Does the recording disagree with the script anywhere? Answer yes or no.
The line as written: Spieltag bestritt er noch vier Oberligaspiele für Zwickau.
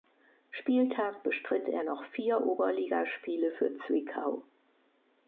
no